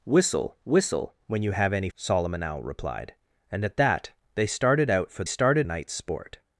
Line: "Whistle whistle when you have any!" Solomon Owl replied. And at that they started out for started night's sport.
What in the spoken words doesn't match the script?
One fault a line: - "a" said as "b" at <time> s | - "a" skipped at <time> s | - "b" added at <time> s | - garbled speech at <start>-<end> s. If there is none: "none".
none